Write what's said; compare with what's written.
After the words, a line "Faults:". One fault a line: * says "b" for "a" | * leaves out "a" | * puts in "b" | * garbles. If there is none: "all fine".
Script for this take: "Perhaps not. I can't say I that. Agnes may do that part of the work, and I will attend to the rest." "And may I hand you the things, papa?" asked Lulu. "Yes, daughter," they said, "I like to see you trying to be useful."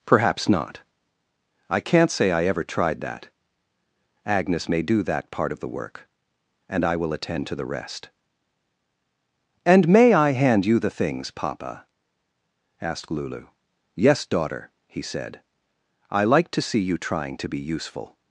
"Perhaps not. I can't say I ever tried that. Agnes may do that part of the work, and I will attend to the rest." "And may I hand you the things, papa?" asked Lulu. "Yes, daughter," he said, "I like to see you trying to be useful."
Faults:
* puts in "ever tried"
* says "he" for "they"